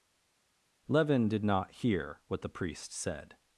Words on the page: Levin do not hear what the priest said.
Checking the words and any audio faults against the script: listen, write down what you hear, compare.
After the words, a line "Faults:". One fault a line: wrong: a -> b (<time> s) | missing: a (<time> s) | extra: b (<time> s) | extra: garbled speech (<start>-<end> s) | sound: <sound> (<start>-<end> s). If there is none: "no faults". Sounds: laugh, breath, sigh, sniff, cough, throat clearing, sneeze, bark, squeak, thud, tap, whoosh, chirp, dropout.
Levin did not hear what the priest said.
Faults:
wrong: do -> did (1.3 s)